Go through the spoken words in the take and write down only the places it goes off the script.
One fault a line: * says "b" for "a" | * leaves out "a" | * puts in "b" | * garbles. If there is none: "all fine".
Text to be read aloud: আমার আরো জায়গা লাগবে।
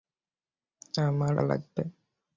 * leaves out "আরো জায়গা"